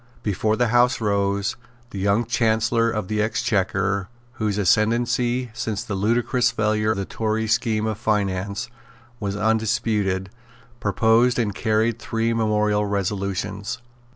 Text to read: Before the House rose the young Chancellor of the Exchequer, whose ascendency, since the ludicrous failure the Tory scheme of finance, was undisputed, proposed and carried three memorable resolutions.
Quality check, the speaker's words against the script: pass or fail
pass